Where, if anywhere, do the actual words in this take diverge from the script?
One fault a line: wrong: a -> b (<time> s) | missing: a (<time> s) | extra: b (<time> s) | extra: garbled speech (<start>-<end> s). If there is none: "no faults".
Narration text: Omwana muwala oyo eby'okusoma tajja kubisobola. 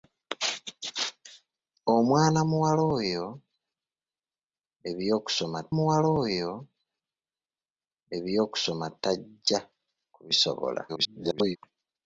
extra: muwala oyo eby'okusoma (5.7 s)
extra: garbled speech (10.9-11.6 s)